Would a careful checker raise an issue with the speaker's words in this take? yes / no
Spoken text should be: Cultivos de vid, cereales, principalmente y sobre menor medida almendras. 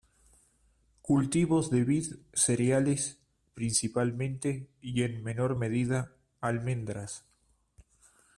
yes